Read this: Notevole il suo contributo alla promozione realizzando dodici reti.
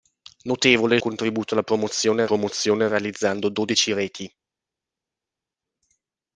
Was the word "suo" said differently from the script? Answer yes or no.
yes